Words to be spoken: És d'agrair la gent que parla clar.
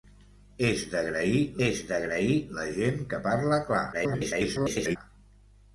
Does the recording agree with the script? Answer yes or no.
no